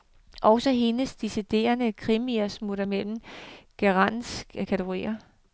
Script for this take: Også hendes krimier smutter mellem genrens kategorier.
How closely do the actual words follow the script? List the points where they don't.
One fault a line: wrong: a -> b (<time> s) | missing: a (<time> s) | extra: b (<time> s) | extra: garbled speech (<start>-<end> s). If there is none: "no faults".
extra: deciderede (1.1 s)